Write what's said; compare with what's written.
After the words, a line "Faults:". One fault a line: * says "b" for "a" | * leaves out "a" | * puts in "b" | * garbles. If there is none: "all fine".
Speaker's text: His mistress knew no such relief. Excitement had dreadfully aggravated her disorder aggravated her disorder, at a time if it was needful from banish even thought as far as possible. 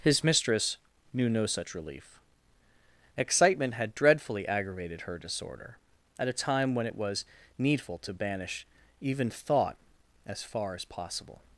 His mistress knew no such relief. Excitement had dreadfully aggravated her disorder, at a time when it was needful to banish even thought as far as possible.
Faults:
* leaves out "aggravated her disorder"
* says "when" for "if"
* says "to" for "from"